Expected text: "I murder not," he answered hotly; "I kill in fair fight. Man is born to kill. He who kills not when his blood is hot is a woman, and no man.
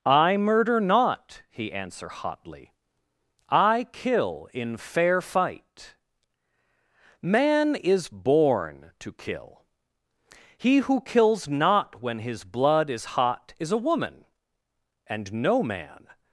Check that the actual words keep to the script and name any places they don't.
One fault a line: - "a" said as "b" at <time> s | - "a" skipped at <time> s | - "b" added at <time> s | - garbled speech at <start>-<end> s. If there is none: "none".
- "answered" said as "answer" at 1.7 s